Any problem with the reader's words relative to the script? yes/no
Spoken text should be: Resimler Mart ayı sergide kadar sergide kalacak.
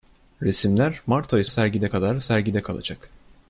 no